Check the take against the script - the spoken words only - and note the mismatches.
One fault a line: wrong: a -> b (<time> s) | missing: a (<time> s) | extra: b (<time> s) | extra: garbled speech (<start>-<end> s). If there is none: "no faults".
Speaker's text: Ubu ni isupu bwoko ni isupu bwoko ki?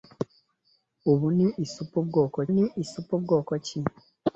no faults